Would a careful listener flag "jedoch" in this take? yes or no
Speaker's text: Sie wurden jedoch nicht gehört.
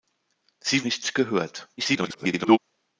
yes